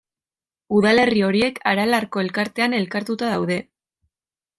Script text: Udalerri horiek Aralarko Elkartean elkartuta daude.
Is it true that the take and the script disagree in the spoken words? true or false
false